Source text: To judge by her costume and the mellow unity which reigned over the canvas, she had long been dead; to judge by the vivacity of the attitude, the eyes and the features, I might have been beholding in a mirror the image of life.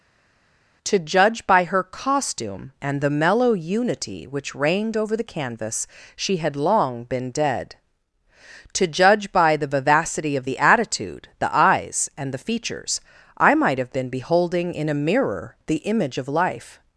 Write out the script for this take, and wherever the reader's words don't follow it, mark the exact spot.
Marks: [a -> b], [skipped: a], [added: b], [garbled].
To judge by her costume and the mellow unity which reigned over the canvas, she had long been dead; to judge by the vivacity of the attitude, the eyes and the features, I might have been beholding in a mirror the image of life.